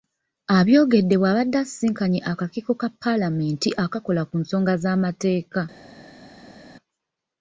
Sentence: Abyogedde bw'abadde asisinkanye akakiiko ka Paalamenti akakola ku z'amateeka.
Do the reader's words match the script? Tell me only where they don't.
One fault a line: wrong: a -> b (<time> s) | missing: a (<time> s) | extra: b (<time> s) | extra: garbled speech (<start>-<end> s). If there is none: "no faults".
extra: nsonga (4.4 s)